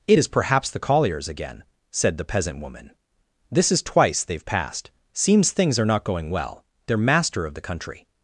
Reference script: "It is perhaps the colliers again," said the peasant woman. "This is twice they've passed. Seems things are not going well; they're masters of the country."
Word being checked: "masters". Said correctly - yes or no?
no